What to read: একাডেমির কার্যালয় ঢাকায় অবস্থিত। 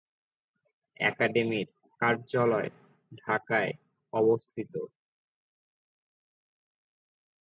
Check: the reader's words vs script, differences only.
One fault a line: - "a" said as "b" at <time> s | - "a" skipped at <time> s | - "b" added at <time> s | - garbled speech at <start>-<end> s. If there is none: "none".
none